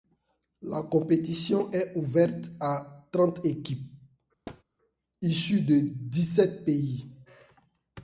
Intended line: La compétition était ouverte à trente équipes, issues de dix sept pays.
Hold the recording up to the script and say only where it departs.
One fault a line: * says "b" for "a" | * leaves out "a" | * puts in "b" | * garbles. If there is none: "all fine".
* says "est" for "était"